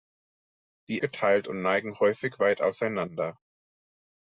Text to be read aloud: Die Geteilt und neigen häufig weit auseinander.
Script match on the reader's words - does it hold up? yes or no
yes